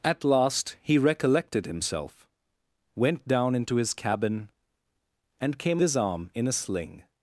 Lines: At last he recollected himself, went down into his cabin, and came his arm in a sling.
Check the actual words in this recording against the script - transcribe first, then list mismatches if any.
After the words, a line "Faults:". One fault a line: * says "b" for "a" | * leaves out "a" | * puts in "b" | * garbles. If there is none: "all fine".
At last he recollected himself, went down into his cabin, and came his arm in a sling.
Faults:
all fine